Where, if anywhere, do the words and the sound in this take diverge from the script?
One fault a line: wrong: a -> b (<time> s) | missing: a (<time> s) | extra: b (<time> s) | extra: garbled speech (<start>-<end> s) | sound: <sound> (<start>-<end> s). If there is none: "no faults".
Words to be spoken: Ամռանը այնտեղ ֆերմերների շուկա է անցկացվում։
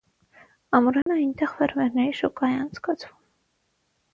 sound: dropout (1.0-1.1 s)